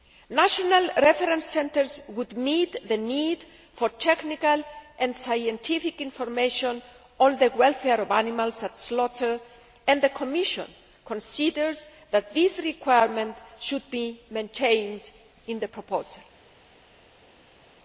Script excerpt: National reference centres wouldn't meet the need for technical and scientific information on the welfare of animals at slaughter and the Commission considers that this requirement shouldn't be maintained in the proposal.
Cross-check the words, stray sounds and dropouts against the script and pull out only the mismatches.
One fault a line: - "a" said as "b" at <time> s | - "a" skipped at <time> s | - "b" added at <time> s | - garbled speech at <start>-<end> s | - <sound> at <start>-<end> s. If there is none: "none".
- "wouldn't" said as "would" at 2.1 s
- "shouldn't" said as "should" at 13.6 s